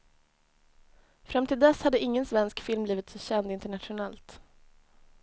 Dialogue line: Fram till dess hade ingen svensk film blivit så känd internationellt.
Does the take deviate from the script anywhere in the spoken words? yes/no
no